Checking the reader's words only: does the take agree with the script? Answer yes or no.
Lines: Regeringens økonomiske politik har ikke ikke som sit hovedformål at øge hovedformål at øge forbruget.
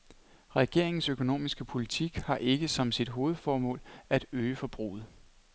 no